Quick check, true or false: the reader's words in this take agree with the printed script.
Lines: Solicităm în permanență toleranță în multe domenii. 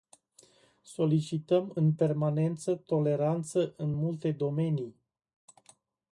true